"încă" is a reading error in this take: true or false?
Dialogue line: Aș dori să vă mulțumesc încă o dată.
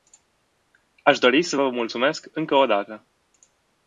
false